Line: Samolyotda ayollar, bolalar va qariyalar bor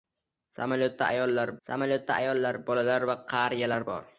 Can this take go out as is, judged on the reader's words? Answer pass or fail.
fail